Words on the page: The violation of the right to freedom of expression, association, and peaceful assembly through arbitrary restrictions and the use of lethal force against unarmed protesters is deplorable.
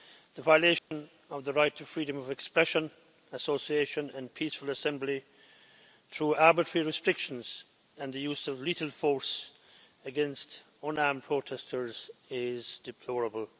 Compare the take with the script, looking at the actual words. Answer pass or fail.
pass